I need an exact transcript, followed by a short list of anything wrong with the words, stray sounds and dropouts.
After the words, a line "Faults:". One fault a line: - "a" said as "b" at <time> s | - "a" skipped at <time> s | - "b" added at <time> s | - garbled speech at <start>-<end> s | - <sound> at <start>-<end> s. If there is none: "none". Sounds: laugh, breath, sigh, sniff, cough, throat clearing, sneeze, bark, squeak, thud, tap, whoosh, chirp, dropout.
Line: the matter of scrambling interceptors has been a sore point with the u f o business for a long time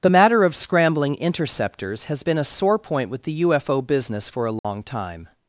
the matter of scrambling interceptors has been a sore point with the u f o business for a long time
Faults:
- dropout at 4.6-4.6 s